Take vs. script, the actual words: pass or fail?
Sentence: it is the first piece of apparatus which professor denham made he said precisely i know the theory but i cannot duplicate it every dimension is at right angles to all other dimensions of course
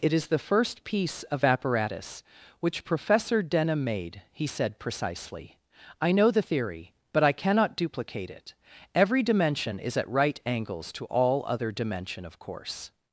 fail